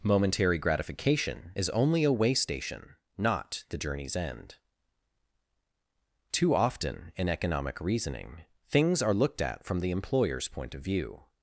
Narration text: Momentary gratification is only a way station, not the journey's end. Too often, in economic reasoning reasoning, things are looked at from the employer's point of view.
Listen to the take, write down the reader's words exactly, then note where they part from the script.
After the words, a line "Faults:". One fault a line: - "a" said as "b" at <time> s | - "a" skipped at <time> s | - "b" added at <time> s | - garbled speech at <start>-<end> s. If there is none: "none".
Momentary gratification is only a way station, not the journey's end. Too often, in economic reasoning, things are looked at from the employer's point of view.
Faults:
- "reasoning" skipped at 8.4 s